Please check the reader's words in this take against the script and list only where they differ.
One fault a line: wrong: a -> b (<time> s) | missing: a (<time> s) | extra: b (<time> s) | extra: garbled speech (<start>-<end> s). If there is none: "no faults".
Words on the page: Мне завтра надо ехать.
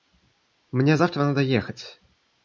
no faults